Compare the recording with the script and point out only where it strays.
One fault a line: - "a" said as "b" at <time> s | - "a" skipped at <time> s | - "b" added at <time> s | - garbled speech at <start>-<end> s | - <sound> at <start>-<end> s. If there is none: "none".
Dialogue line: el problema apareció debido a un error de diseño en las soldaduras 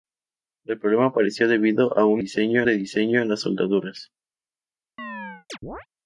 - "error" said as "diseño" at 2.2 s
- chirp at 5.0-5.9 s